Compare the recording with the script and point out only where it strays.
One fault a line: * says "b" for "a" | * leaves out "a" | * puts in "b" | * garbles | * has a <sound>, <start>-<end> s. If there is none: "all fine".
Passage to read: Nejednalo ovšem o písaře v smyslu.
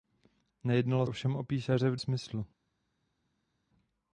all fine